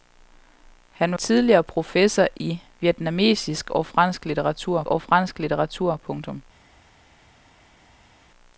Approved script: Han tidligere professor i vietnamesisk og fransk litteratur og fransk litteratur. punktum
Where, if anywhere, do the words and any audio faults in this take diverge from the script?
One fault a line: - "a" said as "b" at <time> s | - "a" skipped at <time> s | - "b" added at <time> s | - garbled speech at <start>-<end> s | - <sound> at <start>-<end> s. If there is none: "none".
none